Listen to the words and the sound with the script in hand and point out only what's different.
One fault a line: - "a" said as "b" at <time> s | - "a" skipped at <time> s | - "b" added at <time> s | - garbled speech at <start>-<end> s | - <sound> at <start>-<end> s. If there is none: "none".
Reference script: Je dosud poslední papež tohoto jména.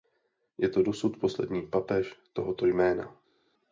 - "to" added at 0.7 s